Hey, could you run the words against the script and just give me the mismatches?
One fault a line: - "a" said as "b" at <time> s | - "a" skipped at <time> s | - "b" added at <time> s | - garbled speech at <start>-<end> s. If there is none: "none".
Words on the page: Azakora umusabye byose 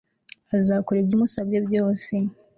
- "ibyo" added at 1.0 s